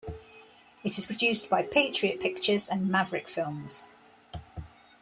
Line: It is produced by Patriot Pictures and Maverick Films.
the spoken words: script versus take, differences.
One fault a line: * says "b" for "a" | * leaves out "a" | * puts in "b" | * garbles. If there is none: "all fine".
all fine